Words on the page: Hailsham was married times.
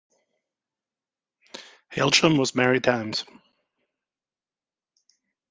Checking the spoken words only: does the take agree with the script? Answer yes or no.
yes